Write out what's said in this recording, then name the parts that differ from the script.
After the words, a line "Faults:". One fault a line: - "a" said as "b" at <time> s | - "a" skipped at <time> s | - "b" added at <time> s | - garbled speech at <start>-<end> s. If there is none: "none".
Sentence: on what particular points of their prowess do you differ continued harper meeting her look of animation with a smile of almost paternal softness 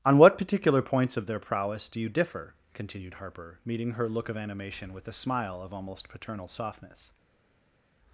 on what particular points of their prowess do you differ continued harper meeting her look of animation with a smile of almost paternal softness
Faults:
none